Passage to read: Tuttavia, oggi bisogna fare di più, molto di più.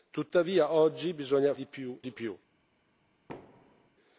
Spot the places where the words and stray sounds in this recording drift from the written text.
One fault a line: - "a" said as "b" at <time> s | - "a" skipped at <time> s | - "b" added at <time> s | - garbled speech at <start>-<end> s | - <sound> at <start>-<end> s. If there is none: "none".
- "fare" skipped at 1.5 s
- "molto" skipped at 2.0 s
- thud at 3.3-3.9 s